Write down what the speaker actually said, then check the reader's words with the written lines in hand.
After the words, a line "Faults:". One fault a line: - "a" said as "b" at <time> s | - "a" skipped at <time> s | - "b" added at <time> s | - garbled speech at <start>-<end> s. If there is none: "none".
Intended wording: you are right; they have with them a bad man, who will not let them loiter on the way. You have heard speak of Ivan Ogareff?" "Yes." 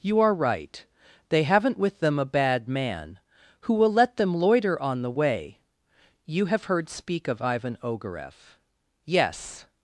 you are right; they haven't with them a bad man, who will let them loiter on the way. You have heard speak of Ivan Ogareff?" "Yes."
Faults:
- "have" said as "haven't" at 1.4 s
- "not" skipped at 3.9 s